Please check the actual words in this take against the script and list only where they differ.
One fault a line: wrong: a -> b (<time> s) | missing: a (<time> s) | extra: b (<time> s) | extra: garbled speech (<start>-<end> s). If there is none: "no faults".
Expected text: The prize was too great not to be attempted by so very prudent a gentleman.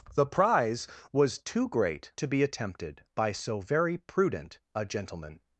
missing: not (2.1 s)